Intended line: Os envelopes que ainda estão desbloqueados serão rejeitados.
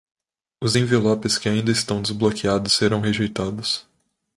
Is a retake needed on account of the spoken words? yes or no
no